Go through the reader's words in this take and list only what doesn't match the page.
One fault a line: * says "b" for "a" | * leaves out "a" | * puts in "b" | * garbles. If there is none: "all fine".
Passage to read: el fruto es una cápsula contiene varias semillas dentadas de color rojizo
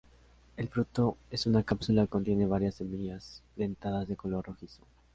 all fine